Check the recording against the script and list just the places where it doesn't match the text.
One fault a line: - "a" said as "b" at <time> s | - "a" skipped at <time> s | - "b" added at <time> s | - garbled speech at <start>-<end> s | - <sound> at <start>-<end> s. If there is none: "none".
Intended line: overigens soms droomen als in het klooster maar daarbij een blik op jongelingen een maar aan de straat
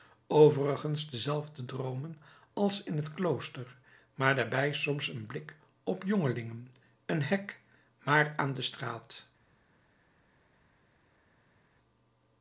- "soms" said as "dezelfde" at 1.1 s
- "soms" added at 4.7 s
- "hek" added at 7.2 s